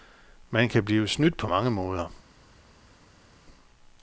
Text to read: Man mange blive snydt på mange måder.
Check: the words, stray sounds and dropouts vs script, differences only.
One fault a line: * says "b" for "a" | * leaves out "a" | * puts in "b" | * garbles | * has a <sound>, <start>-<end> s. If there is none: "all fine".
* says "kan" for "mange"